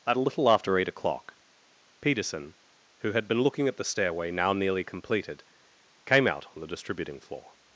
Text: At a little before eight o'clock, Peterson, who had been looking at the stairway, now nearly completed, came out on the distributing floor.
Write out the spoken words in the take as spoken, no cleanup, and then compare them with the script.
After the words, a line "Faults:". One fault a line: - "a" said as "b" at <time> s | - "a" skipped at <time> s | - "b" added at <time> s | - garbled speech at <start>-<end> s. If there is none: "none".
At a little after eight o'clock, Peterson, who had been looking at the stairway, now nearly completed, came out on the distributing floor.
Faults:
- "before" said as "after" at 0.5 s